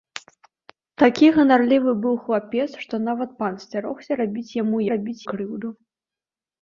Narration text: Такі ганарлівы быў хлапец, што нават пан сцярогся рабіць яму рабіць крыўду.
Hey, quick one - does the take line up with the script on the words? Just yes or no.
yes